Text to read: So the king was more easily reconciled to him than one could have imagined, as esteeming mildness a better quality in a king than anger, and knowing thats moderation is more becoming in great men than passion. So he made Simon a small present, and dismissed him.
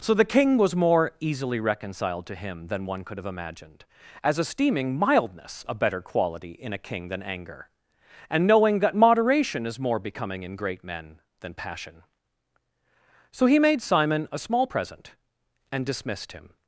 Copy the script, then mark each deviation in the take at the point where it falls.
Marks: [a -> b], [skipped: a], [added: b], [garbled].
So the king was more easily reconciled to him than one could have imagined, as esteeming mildness a better quality in a king than anger, and knowing [thats -> that] moderation is more becoming in great men than passion. So he made Simon a small present, and dismissed him.